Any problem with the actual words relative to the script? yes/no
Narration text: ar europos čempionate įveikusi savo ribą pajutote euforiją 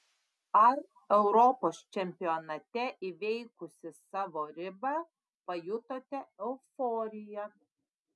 no